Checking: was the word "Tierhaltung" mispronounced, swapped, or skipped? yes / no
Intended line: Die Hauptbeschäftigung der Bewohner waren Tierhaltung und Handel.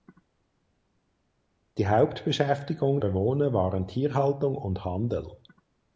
no